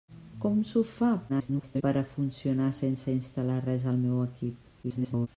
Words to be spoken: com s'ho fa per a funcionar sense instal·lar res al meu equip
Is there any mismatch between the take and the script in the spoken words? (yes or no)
yes